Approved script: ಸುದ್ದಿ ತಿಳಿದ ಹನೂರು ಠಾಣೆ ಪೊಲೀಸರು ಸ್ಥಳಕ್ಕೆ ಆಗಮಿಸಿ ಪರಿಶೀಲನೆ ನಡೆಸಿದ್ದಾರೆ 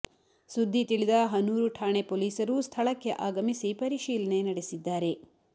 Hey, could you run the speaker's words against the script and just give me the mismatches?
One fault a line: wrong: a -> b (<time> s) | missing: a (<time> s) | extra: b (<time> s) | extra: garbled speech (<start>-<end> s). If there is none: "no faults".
no faults